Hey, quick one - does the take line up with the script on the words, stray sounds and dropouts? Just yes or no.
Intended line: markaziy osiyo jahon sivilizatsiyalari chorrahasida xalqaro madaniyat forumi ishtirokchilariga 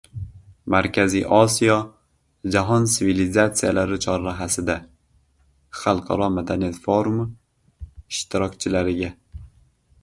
yes